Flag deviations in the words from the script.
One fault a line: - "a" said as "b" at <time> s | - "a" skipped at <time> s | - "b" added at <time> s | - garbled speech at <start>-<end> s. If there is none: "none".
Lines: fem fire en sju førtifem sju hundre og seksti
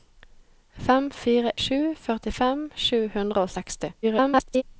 - "en" skipped at 1.5 s
- garbled speech at 4.0-4.6 s